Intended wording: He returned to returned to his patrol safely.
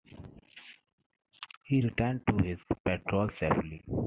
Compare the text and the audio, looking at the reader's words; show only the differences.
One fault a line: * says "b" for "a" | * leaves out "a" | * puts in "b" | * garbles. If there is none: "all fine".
* leaves out "returned to"